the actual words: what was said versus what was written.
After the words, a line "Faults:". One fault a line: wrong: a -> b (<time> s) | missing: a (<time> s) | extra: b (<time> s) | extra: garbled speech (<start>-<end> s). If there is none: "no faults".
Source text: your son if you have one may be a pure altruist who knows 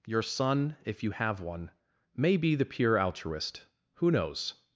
your son if you have one may be the pure altruist who knows
Faults:
wrong: a -> the (2.5 s)